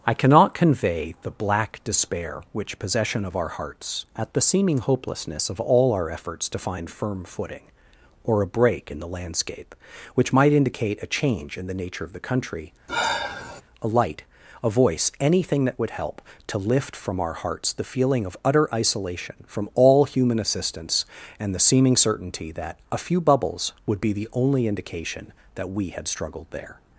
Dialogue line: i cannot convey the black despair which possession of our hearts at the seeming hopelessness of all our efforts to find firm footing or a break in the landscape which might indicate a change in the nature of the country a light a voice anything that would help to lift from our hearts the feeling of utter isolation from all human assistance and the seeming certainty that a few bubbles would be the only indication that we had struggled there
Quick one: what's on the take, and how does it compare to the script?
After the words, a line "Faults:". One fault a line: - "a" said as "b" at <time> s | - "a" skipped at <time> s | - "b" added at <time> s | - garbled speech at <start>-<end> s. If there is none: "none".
i cannot convey the black despair which possession of our hearts at the seeming hopelessness of all our efforts to find firm footing or a break in the landscape which might indicate a change in the nature of the country a light a voice anything that would help to lift from our hearts the feeling of utter isolation from all human assistance and the seeming certainty that a few bubbles would be the only indication that we had struggled there
Faults:
none